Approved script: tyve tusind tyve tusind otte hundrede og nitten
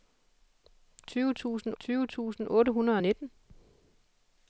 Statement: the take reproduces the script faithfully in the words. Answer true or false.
true